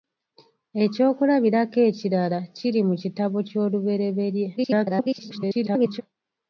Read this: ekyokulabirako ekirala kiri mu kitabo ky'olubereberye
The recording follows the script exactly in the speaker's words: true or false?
false